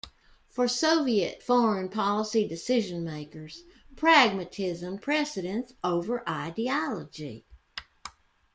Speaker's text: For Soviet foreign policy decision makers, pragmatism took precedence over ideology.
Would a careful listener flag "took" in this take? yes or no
yes